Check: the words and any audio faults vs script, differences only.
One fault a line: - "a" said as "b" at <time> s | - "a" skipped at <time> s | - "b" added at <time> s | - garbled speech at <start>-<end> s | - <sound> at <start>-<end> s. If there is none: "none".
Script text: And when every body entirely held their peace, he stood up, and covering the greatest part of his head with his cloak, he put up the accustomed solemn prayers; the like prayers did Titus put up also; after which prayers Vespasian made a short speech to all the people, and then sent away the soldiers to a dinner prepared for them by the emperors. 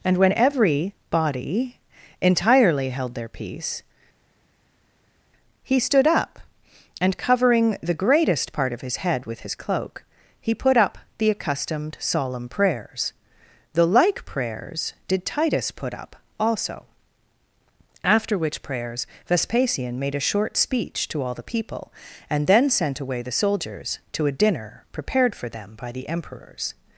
none